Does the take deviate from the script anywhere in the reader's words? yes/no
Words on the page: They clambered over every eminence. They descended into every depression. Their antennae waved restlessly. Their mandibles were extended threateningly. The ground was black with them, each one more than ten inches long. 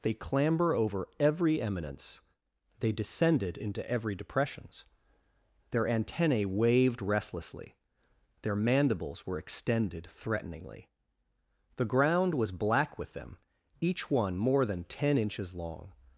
yes